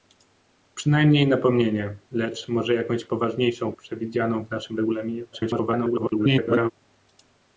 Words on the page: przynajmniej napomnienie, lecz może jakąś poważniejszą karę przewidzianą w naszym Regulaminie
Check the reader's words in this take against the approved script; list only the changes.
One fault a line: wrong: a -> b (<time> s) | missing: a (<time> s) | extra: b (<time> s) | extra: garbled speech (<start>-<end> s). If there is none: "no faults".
missing: karę (3.7 s)
extra: garbled speech (5.3-6.7 s)